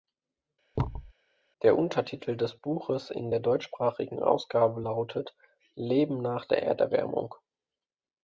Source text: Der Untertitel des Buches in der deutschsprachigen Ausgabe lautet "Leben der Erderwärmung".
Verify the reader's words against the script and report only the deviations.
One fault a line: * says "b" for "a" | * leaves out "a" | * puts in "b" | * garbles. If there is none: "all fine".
* puts in "nach"